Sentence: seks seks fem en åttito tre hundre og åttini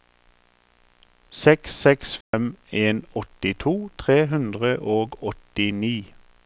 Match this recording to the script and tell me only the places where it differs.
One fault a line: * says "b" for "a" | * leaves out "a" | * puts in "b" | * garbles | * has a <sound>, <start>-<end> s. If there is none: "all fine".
* has a dropout, 2.2-2.3 s